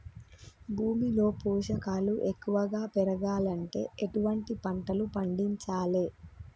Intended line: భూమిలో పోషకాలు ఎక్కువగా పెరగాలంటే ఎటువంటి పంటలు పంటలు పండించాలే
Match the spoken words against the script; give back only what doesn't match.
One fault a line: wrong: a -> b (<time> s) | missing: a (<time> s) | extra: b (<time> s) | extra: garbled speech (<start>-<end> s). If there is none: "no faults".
missing: పంటలు (5.1 s)